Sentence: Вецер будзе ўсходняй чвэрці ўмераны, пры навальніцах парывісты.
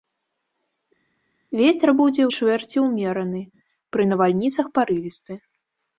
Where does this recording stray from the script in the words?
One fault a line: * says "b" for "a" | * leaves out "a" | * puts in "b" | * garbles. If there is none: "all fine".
* leaves out "ўсходняй"